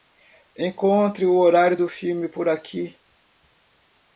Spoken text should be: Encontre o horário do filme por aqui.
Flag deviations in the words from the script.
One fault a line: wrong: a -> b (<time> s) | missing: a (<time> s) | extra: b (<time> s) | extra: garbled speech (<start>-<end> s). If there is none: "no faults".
no faults